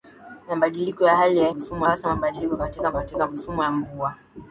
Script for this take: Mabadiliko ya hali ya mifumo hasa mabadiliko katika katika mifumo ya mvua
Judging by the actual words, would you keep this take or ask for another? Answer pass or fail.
pass